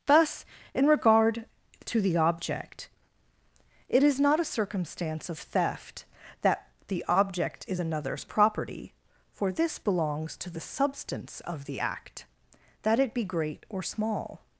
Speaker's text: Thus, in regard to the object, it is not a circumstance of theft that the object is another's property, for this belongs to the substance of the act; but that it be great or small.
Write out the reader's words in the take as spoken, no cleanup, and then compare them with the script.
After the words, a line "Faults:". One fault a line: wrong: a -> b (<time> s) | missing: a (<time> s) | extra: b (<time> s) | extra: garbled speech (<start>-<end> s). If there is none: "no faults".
Thus, in regard to the object, it is not a circumstance of theft that the object is another's property, for this belongs to the substance of the act; that it be great or small.
Faults:
missing: but (12.3 s)